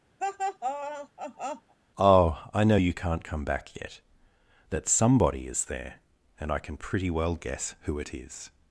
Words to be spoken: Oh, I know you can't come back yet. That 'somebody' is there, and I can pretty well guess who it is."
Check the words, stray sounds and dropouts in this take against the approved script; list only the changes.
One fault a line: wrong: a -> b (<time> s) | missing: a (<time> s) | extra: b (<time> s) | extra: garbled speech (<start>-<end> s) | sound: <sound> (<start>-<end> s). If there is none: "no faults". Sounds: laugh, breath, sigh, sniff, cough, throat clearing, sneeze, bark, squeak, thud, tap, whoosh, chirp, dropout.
sound: laugh (0.2-1.7 s)